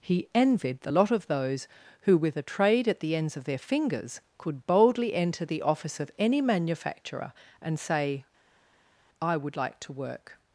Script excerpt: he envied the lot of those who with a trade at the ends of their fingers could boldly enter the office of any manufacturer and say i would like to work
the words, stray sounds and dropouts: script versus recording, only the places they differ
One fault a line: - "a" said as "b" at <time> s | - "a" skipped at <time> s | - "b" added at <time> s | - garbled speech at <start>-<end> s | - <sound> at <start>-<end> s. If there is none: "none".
none